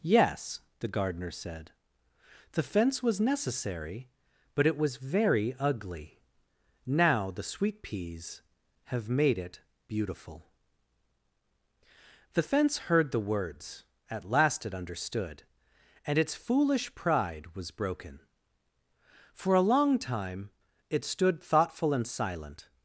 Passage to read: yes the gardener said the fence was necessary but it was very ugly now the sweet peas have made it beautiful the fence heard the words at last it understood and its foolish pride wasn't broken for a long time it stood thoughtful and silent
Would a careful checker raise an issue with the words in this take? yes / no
yes